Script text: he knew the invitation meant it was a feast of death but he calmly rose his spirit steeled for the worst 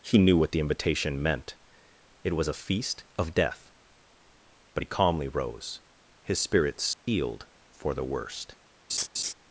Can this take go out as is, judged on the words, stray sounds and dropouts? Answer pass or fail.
fail